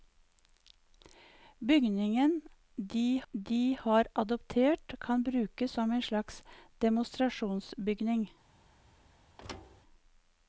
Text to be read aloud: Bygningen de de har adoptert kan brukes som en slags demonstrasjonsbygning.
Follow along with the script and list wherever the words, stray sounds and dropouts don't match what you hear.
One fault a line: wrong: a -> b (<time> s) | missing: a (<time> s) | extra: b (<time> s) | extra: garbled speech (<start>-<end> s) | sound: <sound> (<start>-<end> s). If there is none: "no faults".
sound: thud (9.4-9.8 s)